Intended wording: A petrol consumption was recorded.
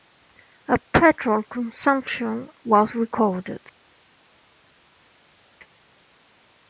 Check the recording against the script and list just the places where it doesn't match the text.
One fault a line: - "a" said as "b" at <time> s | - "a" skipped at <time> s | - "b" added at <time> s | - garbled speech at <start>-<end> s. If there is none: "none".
none